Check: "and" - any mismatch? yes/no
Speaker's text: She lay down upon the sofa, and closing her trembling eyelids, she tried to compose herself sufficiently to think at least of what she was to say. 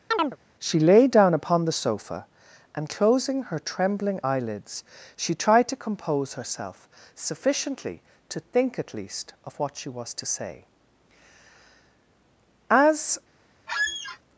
no